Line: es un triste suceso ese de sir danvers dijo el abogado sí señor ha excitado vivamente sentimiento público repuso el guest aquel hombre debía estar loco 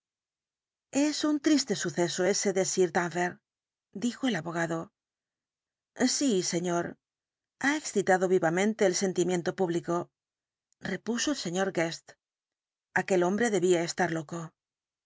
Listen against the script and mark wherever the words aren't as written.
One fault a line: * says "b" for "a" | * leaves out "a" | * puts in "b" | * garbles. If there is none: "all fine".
* puts in "el"
* puts in "sr"